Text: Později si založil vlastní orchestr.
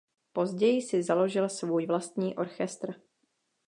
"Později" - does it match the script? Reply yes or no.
yes